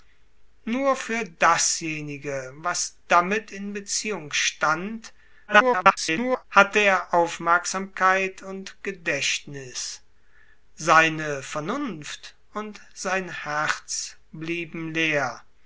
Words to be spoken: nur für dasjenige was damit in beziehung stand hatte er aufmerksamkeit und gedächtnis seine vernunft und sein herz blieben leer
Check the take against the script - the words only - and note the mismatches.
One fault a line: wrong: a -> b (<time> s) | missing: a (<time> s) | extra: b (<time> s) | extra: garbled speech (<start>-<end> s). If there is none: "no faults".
extra: garbled speech (5.5-6.4 s)